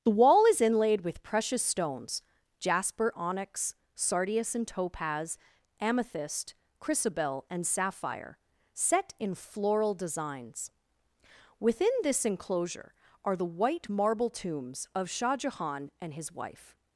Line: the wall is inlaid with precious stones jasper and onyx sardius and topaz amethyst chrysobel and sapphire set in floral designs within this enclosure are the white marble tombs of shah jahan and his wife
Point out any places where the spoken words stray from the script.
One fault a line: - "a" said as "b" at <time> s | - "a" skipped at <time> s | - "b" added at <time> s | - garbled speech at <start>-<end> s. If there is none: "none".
- "and" skipped at 3.1 s